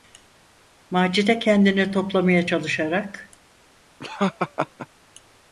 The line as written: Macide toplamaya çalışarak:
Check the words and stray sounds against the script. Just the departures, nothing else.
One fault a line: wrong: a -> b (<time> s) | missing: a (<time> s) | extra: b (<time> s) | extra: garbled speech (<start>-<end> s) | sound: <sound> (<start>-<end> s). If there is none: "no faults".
extra: kendini (1.4 s)
sound: laugh (4.0-4.9 s)